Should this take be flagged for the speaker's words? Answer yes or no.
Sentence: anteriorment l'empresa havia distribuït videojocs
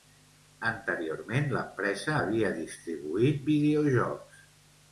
no